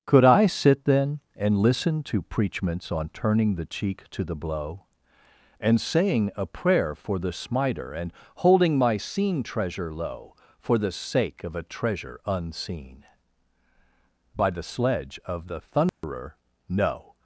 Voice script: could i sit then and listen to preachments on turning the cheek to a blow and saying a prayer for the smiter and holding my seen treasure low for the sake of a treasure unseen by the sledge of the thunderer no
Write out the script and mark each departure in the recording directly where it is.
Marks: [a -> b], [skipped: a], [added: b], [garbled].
could i sit then and listen to preachments on turning the cheek to [a -> the] blow and saying a prayer for the smiter and holding my seen treasure low for the sake of a treasure unseen by the sledge of the thunderer no